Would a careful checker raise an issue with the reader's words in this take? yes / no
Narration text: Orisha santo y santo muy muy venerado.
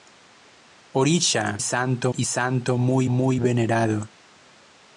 no